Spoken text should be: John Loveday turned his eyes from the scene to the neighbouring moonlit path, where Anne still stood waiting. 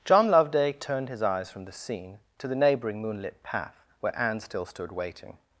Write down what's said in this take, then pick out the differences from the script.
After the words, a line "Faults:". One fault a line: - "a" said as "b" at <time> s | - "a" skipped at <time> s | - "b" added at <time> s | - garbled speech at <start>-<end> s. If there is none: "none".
John Loveday turned his eyes from the scene to the neighbouring moonlit path, where Anne still stood waiting.
Faults:
none